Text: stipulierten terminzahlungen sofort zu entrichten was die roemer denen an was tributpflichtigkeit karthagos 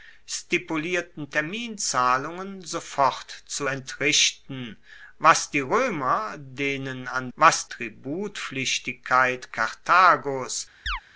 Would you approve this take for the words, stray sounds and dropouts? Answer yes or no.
no